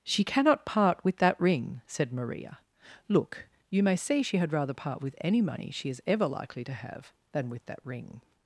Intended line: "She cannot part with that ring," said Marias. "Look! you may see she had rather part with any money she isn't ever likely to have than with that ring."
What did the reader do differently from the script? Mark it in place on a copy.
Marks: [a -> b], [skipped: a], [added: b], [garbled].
"She cannot part with that ring," said [Marias. -> Maria] "Look! you may see she had rather part with any money she [isn't -> is] ever likely to have than with that ring."